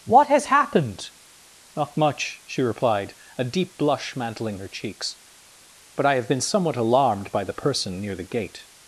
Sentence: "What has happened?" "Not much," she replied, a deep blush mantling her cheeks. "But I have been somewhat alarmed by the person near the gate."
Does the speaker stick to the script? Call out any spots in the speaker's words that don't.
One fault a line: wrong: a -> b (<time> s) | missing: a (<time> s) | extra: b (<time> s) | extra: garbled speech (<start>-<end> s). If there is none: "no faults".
no faults